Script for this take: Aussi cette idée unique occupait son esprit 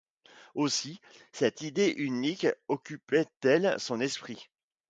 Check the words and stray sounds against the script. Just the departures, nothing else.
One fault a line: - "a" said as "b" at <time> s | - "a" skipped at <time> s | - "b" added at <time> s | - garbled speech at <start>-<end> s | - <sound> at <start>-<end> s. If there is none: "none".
- "elle" added at 3.4 s